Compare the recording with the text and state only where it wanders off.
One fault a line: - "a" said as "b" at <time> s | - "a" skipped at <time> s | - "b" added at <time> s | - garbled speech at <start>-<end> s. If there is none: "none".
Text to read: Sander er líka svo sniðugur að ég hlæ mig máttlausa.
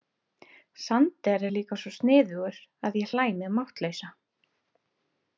none